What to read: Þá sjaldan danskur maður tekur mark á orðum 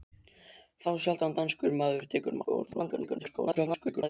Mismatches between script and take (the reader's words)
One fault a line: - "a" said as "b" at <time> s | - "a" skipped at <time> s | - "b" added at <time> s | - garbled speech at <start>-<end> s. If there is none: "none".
- "mark" skipped at 2.4 s
- garbled speech at 2.7-4.1 s